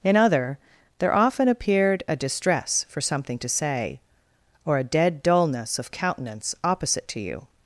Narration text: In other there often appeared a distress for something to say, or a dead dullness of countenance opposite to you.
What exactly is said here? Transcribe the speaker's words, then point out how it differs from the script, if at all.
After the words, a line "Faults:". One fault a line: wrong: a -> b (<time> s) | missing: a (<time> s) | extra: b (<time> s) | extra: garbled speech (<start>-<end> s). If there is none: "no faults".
In other there often appeared a distress for something to say, or a dead dullness of countenance opposite to you.
Faults:
no faults